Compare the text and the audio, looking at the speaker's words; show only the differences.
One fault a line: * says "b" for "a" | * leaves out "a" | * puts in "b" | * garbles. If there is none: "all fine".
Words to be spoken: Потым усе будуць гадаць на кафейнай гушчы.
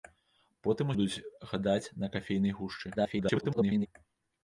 * leaves out "усе"
* garbles